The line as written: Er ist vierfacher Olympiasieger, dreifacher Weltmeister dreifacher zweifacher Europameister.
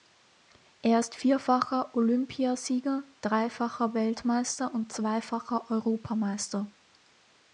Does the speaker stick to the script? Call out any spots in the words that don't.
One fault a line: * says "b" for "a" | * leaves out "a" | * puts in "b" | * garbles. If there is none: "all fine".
* says "und" for "dreifacher"